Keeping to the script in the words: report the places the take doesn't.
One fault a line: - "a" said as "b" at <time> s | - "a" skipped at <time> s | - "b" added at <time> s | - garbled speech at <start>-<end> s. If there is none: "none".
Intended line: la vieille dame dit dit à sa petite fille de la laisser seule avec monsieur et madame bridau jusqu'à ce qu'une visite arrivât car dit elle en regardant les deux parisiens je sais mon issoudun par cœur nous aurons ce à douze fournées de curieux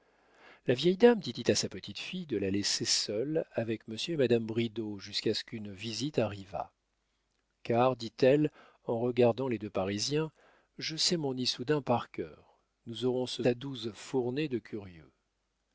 none